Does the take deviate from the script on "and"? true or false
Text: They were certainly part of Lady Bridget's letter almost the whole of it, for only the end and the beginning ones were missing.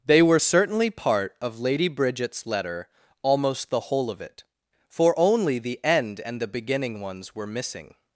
false